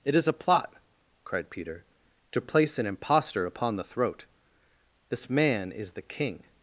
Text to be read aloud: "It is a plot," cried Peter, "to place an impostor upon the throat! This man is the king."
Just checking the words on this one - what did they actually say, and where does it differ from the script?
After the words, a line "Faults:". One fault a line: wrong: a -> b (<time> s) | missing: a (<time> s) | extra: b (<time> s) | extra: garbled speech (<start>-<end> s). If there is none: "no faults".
"It is a plot," cried Peter, "to place an impostor upon the throat! This man is the king."
Faults:
no faults